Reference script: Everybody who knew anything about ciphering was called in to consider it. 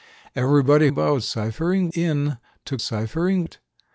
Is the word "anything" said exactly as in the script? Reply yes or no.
no